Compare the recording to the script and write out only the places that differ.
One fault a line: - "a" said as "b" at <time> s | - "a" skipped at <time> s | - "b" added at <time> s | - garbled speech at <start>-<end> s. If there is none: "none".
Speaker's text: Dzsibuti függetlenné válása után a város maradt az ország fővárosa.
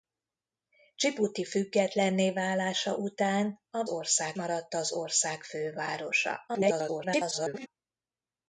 - "város" said as "ország" at 3.9 s
- garbled speech at 6.5-7.7 s